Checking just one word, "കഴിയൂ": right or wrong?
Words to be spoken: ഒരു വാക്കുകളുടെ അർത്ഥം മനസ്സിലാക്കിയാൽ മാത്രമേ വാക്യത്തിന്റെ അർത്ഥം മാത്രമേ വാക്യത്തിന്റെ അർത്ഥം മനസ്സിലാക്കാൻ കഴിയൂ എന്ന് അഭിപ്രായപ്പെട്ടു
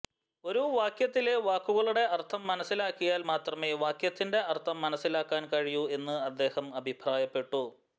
right